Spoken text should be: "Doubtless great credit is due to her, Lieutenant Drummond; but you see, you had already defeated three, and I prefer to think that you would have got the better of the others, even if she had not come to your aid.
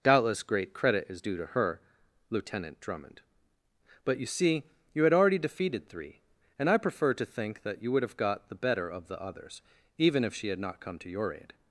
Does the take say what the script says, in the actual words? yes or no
yes